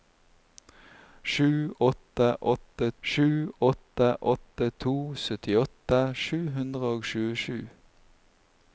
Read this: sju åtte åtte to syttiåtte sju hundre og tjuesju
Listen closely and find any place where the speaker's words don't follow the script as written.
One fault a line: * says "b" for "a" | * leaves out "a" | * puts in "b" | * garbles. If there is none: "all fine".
* puts in "sju åtte åtte"